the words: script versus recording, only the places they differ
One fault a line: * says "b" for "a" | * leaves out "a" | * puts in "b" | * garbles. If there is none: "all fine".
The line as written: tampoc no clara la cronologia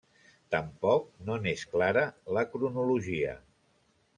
* puts in "n'és"